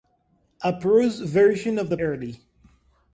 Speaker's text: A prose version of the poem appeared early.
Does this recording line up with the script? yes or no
no